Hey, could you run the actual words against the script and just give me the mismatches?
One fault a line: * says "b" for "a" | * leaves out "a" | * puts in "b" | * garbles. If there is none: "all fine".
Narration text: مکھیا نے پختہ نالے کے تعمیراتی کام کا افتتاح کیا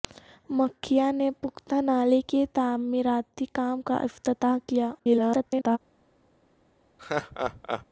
* garbles